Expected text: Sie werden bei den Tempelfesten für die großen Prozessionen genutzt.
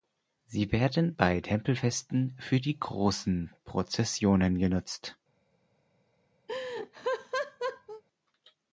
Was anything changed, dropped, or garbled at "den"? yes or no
yes